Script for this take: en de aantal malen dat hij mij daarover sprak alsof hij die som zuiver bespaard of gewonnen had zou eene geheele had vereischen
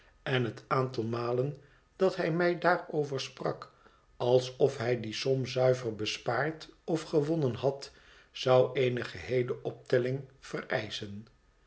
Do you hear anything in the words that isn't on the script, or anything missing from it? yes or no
yes